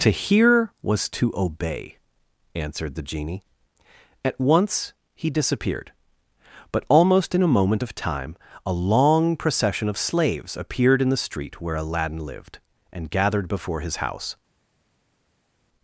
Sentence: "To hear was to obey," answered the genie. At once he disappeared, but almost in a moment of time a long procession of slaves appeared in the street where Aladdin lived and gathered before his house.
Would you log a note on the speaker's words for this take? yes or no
no